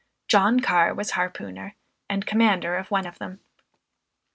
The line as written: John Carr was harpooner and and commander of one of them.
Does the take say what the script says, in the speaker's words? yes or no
no